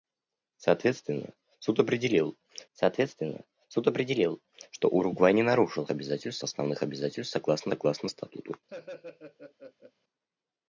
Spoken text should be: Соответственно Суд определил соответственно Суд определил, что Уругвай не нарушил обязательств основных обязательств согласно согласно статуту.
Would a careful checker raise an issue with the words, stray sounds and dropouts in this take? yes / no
yes